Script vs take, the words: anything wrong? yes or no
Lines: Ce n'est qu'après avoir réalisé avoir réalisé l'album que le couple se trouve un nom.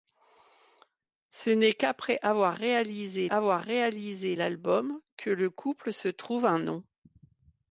no